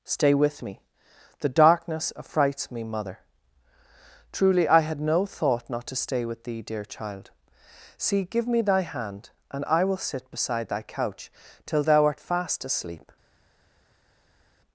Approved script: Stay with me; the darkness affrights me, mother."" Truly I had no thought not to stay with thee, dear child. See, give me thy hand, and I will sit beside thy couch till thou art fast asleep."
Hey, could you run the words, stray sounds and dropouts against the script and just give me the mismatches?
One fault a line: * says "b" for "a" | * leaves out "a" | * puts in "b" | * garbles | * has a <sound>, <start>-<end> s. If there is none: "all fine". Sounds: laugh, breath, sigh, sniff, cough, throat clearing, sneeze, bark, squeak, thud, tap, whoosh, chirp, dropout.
all fine